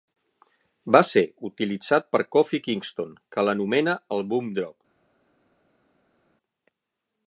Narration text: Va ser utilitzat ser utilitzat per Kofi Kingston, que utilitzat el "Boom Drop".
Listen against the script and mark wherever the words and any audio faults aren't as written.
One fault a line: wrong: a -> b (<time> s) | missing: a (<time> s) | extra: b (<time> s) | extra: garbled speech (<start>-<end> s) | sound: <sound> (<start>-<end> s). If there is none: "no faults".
missing: ser utilitzat (2.1 s)
wrong: utilitzat -> l'anomena (3.5 s)